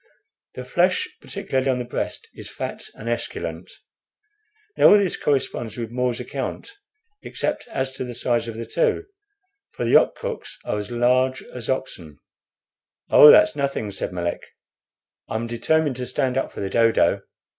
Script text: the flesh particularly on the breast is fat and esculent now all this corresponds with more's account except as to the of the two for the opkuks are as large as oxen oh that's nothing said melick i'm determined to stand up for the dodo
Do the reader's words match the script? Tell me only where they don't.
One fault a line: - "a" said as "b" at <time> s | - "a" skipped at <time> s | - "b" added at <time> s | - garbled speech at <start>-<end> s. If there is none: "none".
- "size" added at 8.1 s